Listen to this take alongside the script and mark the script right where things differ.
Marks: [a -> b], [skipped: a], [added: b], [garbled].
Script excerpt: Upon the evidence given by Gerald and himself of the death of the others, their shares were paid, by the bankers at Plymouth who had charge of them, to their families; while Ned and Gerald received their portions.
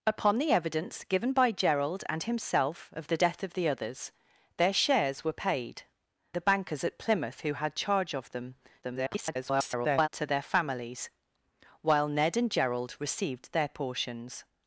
Upon the evidence given by Gerald and himself of the death of the others, their shares were paid, [skipped: by] the bankers at Plymouth who had charge of them, [garbled] to their families; while Ned and Gerald received their portions.